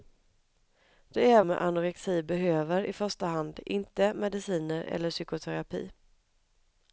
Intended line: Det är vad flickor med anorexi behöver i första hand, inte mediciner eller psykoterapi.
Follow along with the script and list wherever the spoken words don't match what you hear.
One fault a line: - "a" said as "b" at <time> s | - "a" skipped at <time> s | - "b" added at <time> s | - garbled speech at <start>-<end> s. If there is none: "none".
- "vad flickor" skipped at 1.4 s